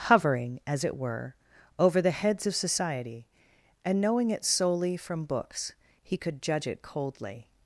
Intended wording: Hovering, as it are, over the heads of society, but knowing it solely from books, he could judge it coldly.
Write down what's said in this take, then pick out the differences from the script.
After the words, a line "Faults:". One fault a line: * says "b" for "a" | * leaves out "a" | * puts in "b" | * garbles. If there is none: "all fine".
Hovering, as it were, over the heads of society, and knowing it solely from books, he could judge it coldly.
Faults:
* says "were" for "are"
* says "and" for "but"